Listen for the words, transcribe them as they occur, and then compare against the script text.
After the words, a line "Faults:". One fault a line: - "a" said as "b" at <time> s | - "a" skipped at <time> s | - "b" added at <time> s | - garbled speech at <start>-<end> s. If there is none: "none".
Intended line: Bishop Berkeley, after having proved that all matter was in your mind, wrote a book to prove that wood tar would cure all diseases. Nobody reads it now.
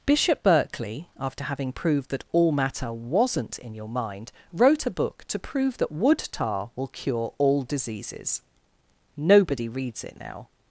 Bishop Berkeley, after having proved that all matter wasn't in your mind, wrote a book to prove that wood tar will cure all diseases. Nobody reads it now.
Faults:
- "was" said as "wasn't" at 2.9 s
- "would" said as "will" at 6.8 s